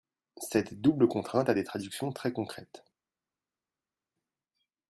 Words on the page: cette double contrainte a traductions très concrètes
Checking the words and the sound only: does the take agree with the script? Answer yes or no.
no